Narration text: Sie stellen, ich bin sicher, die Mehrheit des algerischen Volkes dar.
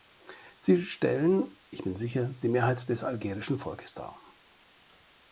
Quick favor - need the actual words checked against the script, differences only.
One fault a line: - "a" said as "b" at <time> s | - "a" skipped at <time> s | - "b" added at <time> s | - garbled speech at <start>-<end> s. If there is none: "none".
none